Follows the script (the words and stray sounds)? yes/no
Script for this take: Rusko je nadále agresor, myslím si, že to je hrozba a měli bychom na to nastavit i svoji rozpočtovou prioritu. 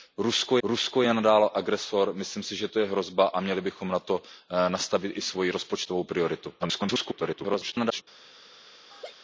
no